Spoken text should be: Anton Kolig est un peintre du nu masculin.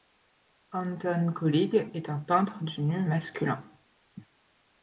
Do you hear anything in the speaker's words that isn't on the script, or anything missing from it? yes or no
no